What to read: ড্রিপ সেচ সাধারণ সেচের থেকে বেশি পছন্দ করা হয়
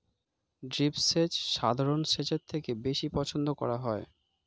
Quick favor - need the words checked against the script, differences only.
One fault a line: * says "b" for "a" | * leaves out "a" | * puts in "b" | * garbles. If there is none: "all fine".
all fine